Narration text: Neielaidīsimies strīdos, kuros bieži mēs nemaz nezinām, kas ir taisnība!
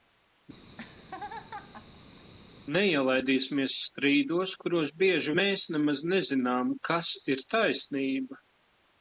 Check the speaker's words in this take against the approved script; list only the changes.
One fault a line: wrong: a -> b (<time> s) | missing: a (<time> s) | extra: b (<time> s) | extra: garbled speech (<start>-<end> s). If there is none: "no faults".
no faults